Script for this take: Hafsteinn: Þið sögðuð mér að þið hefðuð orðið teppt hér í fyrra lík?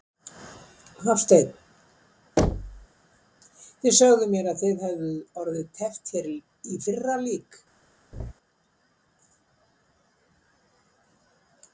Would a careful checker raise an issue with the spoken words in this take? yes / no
no